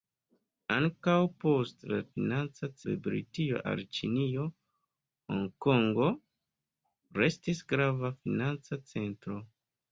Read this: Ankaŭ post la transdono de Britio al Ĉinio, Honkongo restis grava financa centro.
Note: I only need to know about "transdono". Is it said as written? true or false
false